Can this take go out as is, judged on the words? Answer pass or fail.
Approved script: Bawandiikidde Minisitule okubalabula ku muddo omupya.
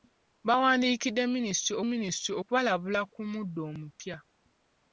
fail